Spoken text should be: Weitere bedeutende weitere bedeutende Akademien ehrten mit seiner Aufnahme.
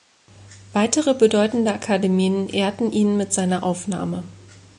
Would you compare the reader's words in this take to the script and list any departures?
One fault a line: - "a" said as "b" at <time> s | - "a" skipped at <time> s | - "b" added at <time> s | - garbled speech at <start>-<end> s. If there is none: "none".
- "weitere bedeutende" skipped at 1.7 s
- "ihn" added at 2.9 s